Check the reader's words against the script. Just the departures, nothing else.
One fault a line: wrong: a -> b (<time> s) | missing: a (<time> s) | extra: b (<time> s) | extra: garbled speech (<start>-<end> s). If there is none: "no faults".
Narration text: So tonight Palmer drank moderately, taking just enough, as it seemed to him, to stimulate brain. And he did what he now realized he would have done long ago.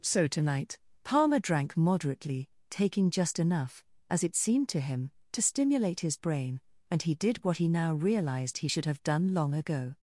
extra: his (6.0 s)
wrong: would -> should (8.7 s)